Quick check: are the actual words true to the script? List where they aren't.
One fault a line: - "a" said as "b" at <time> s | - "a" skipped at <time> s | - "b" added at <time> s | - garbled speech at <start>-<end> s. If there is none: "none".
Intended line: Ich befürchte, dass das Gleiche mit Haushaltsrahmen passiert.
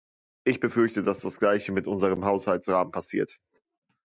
- "unserem" added at 1.9 s